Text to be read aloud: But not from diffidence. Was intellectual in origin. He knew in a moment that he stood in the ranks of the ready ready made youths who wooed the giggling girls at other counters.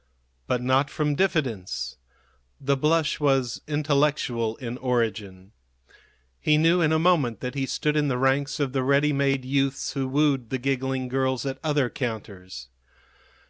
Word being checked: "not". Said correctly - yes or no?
yes